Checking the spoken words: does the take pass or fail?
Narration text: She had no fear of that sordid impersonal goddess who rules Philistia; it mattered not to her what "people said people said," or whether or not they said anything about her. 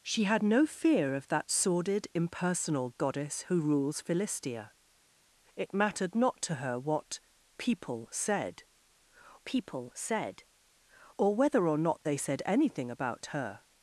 pass